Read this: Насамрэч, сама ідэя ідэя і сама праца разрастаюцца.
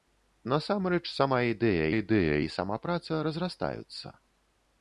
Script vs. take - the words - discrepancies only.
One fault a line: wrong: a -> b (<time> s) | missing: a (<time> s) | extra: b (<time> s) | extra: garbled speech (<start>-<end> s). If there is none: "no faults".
no faults